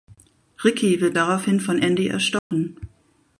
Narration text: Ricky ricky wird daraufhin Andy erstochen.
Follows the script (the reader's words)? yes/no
no